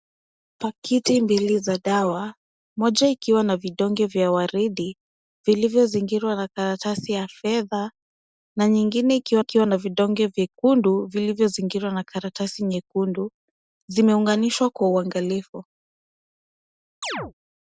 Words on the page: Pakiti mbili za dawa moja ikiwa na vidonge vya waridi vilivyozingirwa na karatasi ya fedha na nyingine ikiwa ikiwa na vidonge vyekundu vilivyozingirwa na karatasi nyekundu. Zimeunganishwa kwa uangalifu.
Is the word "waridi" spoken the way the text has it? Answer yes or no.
yes